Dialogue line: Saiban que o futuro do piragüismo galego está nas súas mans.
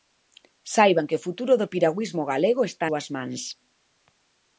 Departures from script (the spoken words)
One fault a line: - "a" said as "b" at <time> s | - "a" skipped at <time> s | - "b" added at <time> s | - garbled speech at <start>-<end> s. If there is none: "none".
- "nas" skipped at 2.9 s